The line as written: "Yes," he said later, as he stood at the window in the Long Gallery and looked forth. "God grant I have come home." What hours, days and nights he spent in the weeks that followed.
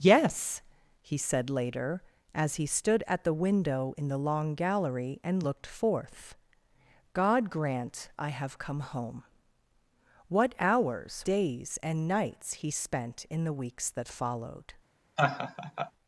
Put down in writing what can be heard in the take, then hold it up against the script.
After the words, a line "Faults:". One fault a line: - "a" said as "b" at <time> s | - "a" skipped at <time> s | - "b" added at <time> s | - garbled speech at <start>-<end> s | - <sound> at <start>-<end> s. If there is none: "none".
"Yes," he said later, as he stood at the window in the Long Gallery and looked forth. "God grant I have come home." What hours, days and nights he spent in the weeks that followed.
Faults:
- laugh at 15.2-15.9 s